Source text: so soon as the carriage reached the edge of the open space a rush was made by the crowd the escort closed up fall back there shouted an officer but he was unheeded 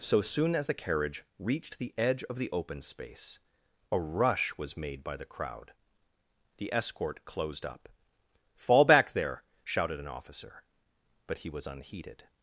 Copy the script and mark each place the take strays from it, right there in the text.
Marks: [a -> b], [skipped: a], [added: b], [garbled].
so soon as the carriage reached the edge of the open space a rush was made by the crowd the escort closed up fall back there shouted an officer but he was unheeded